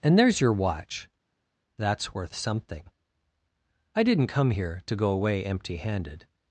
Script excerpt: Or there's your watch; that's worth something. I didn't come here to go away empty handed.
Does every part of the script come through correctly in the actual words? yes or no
no